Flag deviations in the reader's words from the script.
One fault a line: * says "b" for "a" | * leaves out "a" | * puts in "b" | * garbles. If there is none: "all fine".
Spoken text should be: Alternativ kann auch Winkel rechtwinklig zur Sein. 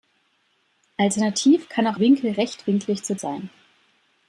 all fine